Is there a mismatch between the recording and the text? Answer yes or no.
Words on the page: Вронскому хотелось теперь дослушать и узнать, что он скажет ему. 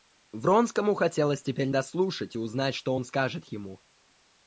no